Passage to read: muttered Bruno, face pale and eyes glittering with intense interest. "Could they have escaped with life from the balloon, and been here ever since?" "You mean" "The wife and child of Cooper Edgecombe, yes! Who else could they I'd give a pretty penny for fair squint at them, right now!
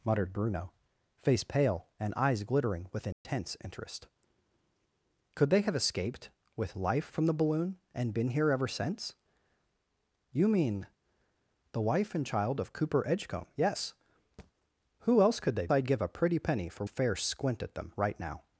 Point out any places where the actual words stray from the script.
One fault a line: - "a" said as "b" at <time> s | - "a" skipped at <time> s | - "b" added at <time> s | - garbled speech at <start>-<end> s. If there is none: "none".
none